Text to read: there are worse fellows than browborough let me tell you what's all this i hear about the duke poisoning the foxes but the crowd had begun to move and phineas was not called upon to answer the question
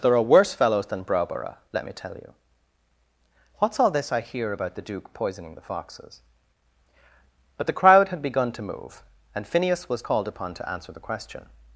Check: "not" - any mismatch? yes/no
yes